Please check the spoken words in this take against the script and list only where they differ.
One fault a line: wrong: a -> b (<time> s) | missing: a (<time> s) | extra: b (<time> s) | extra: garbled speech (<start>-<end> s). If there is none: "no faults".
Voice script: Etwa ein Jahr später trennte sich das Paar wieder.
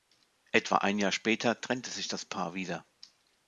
no faults